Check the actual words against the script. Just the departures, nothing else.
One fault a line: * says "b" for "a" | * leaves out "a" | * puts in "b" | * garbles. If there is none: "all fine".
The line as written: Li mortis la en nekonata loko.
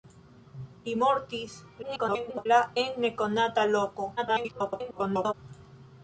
* garbles
* garbles